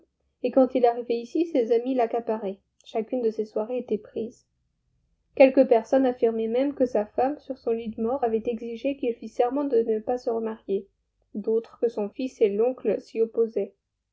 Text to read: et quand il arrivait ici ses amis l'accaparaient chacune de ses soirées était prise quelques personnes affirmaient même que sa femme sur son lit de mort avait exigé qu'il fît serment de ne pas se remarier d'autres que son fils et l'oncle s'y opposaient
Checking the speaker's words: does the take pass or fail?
pass